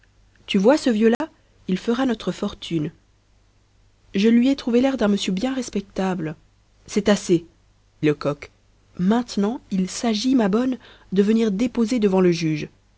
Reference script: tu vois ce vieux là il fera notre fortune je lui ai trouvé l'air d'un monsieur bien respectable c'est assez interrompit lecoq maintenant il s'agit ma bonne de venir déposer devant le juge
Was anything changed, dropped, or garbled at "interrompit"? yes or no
yes